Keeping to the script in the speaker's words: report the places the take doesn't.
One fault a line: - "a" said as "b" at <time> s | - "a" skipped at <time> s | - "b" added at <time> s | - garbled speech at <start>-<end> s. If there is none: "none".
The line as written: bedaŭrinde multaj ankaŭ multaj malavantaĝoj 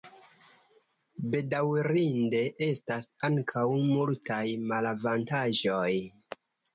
- "multaj" said as "estas" at 2.7 s